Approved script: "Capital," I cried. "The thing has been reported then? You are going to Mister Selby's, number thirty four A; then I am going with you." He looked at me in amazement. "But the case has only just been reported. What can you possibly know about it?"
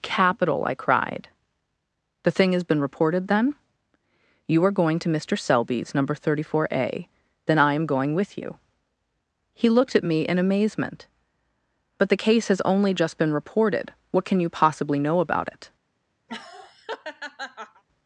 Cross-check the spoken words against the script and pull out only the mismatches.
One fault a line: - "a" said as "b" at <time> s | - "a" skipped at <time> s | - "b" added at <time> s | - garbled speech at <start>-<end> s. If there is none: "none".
none